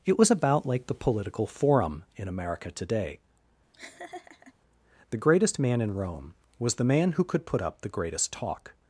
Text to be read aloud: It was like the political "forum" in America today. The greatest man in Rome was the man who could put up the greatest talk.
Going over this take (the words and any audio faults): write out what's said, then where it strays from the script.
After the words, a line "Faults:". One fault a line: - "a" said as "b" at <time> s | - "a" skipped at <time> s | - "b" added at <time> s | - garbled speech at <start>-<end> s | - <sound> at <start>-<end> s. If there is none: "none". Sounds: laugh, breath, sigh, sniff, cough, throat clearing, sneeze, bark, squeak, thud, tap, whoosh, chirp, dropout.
It was about like the political "forum" in America today. The greatest man in Rome was the man who could put up the greatest talk.
Faults:
- "about" added at 0.3 s
- laugh at 3.7-4.5 s